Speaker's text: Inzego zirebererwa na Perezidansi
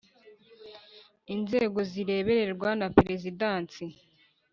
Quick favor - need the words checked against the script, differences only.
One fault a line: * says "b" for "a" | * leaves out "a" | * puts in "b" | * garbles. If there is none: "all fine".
all fine